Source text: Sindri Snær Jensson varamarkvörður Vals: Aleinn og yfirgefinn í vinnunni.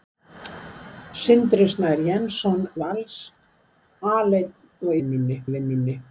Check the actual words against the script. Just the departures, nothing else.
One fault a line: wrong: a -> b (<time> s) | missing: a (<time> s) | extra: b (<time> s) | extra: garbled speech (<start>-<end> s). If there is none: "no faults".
missing: varamarkvörður (2.6 s)
wrong: yfirgefinn -> vinnunni (5.0 s)